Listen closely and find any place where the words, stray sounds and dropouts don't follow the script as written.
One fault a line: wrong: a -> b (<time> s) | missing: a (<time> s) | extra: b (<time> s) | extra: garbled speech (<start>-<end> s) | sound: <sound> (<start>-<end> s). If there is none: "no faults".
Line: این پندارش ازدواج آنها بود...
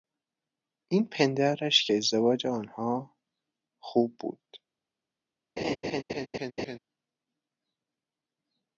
extra: که (1.9 s)
extra: خوب (3.8 s)
sound: laugh (5.6-6.8 s)